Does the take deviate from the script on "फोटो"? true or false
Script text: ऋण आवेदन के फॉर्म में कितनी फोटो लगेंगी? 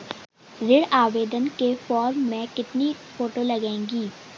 false